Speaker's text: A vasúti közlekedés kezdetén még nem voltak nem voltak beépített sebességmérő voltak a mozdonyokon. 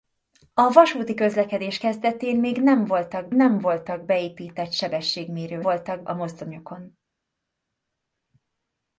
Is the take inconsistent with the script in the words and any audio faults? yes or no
no